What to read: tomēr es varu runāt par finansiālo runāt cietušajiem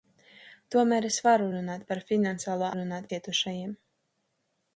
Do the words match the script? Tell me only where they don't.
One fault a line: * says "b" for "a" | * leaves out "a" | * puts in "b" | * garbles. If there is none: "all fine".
all fine